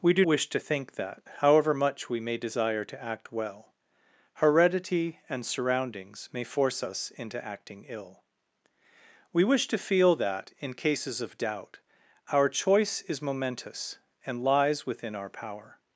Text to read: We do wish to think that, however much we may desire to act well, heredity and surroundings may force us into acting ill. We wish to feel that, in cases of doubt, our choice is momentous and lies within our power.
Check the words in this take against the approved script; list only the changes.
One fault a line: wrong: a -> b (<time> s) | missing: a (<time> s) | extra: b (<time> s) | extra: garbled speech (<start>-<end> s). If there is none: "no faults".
no faults